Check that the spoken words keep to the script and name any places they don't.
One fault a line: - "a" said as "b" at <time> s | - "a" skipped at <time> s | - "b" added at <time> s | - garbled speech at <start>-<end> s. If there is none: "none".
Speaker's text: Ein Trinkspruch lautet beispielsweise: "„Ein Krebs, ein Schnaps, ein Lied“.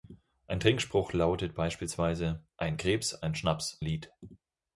- "ein" skipped at 3.8 s